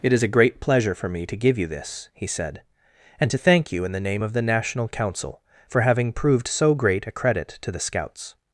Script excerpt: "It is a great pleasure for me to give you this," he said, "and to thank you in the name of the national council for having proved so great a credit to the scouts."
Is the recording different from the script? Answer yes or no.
no